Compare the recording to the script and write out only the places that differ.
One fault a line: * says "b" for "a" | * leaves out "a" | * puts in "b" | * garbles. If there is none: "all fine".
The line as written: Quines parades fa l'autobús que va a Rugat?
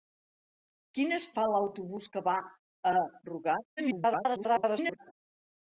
* leaves out "parades"
* garbles